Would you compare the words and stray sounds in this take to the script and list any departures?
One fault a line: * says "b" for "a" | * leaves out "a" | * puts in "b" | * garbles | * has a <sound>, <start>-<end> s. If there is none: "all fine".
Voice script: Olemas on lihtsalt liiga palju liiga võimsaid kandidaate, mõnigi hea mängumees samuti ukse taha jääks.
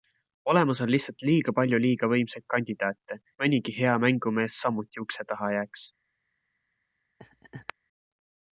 * has a laugh, 7.2-7.7 s